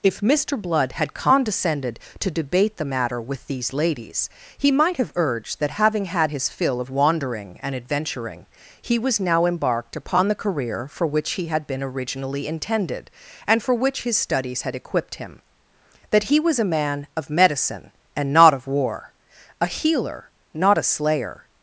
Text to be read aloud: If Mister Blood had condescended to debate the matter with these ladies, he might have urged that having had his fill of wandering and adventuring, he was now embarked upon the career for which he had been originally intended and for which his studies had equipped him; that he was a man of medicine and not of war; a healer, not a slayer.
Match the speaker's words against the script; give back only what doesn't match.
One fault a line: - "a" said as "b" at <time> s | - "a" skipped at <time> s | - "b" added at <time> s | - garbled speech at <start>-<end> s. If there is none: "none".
none